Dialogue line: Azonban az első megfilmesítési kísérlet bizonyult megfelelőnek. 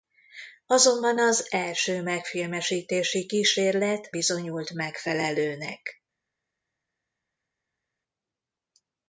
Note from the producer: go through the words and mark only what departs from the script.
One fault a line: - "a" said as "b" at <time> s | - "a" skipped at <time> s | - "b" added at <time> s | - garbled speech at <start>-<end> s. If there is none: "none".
none